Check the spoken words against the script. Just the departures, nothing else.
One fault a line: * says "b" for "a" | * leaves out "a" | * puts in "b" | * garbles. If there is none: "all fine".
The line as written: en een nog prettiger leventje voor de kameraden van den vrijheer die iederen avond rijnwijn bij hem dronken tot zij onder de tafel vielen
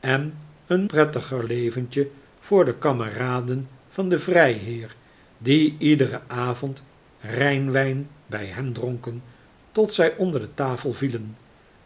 * leaves out "nog"